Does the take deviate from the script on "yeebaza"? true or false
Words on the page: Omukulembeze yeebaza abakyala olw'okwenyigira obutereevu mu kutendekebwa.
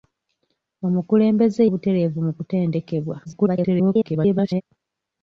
true